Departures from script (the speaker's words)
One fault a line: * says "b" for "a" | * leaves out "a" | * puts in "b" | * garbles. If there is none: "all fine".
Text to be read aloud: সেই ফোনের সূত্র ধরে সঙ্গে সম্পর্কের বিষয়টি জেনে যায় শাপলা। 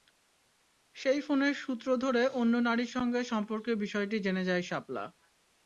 * puts in "অন্য নারীর"